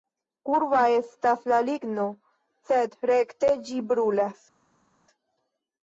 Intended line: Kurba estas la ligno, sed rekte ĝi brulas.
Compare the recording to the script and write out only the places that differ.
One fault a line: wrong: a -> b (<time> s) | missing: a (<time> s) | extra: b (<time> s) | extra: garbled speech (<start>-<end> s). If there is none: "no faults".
no faults